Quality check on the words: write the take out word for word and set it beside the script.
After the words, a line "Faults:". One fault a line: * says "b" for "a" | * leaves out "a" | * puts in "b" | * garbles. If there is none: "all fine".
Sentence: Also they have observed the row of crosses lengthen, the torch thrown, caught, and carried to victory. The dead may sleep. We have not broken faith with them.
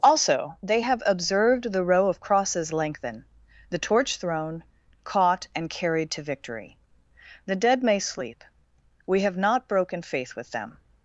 Also they have observed the row of crosses lengthen, the torch thrown, caught, and carried to victory. The dead may sleep. We have not broken faith with them.
Faults:
all fine